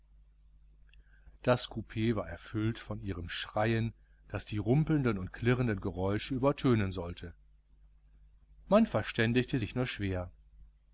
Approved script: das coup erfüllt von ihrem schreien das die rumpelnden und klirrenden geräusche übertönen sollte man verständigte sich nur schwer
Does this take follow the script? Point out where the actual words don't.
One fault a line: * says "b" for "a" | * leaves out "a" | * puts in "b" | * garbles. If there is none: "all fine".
* puts in "war"